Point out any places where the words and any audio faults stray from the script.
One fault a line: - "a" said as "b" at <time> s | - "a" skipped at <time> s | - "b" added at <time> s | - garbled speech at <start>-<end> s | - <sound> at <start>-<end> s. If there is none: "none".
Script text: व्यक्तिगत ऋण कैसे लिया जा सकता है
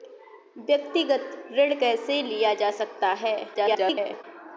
- garbled speech at 3.5-4.2 s